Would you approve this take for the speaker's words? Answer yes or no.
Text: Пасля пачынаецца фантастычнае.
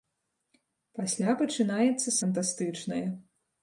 yes